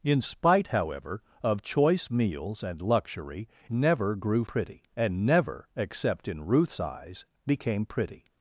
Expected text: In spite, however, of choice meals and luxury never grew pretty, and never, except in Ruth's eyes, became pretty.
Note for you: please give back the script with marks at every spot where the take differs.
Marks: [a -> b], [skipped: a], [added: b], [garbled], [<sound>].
In spite, however, of choice meals and luxury never grew pretty, and never, except in Ruth's eyes, became pretty.